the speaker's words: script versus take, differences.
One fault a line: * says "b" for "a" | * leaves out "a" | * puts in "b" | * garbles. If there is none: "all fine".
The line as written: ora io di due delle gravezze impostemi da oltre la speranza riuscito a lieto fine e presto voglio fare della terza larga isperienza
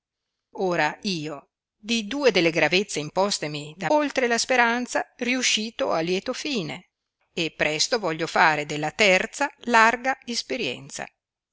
all fine